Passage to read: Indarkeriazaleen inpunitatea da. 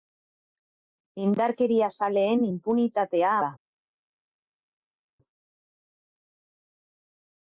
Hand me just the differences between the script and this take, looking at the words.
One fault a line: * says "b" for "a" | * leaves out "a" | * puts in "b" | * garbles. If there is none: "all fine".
all fine